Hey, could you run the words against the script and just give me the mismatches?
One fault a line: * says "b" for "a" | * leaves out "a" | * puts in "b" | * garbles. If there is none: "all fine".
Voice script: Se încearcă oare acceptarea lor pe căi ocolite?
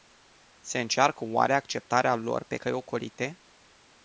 all fine